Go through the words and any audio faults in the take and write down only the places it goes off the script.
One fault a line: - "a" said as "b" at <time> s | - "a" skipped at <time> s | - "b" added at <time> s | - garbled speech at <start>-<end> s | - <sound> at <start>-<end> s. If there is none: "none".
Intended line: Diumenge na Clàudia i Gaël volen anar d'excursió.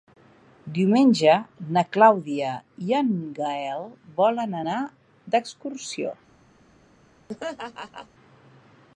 - "en" added at 3.0 s
- laugh at 7.3-8.1 s